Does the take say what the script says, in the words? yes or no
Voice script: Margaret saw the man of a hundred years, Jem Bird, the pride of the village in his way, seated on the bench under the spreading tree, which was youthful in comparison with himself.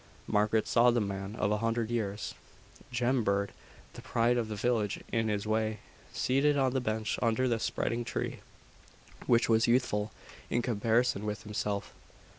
yes